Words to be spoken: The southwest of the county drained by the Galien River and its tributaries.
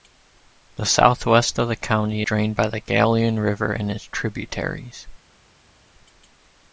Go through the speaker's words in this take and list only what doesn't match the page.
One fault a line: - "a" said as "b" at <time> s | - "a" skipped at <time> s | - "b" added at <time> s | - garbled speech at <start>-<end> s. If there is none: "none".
none